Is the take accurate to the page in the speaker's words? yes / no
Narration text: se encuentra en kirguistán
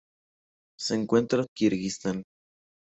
yes